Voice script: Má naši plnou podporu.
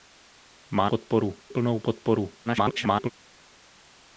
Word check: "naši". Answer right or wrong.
wrong